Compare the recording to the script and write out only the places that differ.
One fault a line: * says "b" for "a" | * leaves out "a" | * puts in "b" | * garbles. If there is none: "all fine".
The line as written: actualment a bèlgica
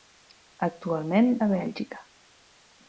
all fine